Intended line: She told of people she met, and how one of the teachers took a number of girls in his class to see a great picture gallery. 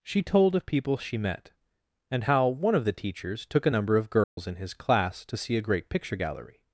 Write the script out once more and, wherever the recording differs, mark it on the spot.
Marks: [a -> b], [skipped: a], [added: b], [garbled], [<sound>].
She told of people she met, and how one of the teachers took a number of girls [dropout] in his class to see a great picture gallery.